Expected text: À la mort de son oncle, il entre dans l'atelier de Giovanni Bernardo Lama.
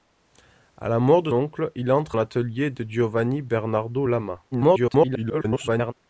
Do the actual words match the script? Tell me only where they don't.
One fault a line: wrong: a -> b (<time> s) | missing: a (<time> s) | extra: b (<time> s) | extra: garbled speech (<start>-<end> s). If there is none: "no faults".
missing: son (1.3 s)
missing: dans (2.2 s)
extra: garbled speech (4.5-5.9 s)